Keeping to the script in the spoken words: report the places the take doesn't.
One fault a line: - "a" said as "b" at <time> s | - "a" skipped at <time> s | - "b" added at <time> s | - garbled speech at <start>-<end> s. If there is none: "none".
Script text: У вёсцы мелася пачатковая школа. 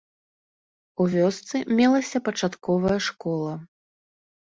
none